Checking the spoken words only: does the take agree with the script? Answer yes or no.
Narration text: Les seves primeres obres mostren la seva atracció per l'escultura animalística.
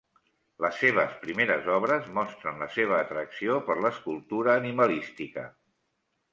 yes